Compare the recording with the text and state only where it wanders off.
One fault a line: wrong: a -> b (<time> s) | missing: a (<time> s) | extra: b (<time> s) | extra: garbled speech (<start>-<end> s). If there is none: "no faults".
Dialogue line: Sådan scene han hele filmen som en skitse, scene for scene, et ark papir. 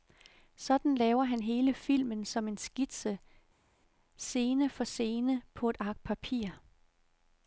wrong: scene -> laver (0.9 s)
extra: på (5.5 s)